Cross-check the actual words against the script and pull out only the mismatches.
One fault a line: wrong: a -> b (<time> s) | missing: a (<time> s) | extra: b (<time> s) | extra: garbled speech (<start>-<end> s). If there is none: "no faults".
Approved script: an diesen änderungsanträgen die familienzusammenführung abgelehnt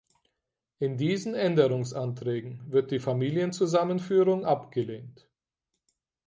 wrong: an -> in (0.8 s)
extra: wird (2.7 s)